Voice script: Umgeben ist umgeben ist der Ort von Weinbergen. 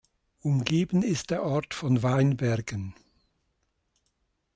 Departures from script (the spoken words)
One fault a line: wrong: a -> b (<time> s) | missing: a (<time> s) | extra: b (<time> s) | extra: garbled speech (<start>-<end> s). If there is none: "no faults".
missing: umgeben ist (1.3 s)